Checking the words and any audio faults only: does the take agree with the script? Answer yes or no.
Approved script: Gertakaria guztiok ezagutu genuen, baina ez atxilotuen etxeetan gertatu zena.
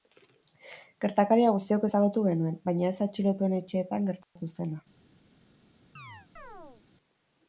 no